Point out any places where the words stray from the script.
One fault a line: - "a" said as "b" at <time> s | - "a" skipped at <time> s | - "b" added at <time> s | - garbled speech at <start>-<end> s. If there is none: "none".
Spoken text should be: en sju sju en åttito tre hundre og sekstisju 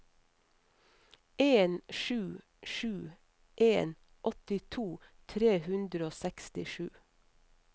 none